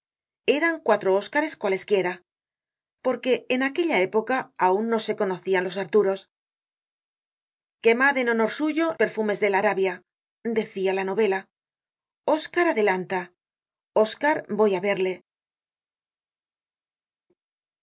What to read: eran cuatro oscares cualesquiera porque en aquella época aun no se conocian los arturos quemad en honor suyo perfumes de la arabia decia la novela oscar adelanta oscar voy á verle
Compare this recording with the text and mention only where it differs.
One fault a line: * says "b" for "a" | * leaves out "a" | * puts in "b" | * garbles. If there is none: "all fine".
all fine